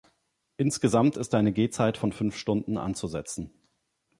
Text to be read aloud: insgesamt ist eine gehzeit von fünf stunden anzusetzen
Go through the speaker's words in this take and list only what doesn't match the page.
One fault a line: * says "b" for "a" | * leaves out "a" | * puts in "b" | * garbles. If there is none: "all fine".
all fine